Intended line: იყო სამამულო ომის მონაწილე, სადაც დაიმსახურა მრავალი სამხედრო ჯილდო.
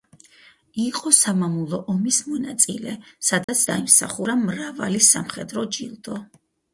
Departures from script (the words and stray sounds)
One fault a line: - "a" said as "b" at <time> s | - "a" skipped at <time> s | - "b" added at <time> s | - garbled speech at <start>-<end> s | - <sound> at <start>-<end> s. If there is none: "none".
- dropout at 3.4-3.5 s